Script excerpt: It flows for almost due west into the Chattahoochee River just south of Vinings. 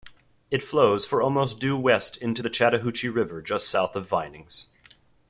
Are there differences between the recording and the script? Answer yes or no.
no